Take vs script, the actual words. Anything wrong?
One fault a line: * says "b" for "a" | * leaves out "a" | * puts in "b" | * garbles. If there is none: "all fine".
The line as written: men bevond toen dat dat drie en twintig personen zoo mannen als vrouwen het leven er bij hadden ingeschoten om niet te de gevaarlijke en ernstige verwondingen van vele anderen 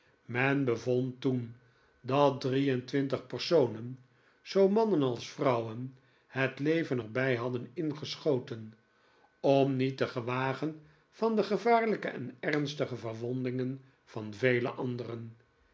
* leaves out "dat"
* puts in "gewagen van"